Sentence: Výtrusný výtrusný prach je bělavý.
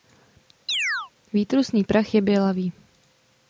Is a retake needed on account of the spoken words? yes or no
yes